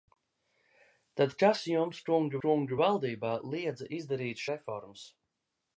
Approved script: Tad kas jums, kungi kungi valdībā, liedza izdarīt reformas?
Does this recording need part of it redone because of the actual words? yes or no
no